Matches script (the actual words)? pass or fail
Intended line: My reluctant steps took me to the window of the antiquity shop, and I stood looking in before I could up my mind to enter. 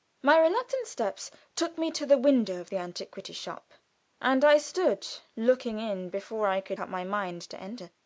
pass